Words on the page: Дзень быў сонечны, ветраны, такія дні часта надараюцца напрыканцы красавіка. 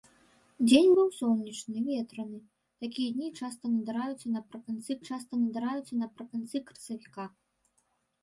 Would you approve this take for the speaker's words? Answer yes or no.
no